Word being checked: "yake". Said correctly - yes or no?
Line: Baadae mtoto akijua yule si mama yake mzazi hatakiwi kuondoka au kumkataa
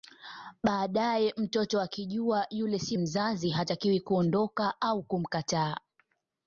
no